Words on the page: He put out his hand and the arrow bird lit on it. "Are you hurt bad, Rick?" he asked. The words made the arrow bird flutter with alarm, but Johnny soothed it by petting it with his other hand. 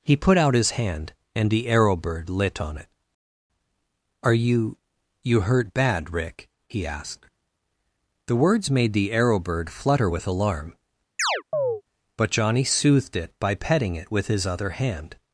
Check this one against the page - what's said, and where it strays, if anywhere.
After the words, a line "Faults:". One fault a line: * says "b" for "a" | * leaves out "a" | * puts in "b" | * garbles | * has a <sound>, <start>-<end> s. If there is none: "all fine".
He put out his hand and the arrow bird lit on it. "Are you you hurt bad, Rick?" he asked. The words made the arrow bird flutter with alarm, but Johnny soothed it by petting it with his other hand.
Faults:
* puts in "you"
* has a chirp, 11.2-11.8 s